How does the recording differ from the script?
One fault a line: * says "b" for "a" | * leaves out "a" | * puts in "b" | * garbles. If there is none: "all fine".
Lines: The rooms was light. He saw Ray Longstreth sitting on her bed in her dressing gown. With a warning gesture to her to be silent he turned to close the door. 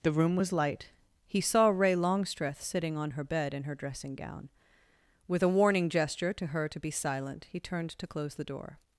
* says "room" for "rooms"